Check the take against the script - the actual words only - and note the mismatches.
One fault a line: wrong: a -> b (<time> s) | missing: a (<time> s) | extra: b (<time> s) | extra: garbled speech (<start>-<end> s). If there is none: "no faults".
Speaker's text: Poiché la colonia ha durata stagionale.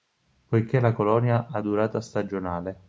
no faults